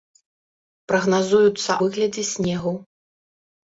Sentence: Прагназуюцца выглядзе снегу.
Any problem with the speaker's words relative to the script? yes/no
no